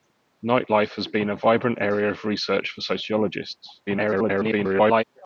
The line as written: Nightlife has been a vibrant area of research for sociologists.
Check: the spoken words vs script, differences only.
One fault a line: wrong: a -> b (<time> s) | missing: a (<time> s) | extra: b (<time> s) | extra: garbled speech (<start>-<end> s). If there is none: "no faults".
extra: garbled speech (3.9-5.0 s)